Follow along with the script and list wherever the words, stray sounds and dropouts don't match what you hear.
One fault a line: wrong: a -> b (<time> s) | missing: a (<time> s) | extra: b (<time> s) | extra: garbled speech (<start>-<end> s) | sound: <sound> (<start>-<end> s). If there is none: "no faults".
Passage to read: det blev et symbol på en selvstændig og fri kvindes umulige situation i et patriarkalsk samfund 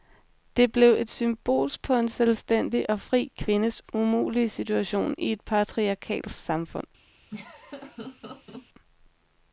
sound: laugh (7.3-8.7 s)